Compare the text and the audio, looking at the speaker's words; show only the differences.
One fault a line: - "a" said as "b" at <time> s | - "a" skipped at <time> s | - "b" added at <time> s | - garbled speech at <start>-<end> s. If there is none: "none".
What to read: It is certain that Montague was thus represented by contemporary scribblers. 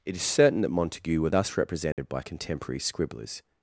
- "was" said as "were" at 1.2 s